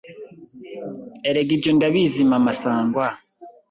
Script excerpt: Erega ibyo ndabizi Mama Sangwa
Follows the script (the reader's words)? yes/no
yes